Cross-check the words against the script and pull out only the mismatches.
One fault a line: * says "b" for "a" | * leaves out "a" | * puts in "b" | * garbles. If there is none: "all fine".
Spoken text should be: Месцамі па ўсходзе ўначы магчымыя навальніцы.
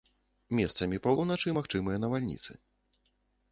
* leaves out "ўсходзе"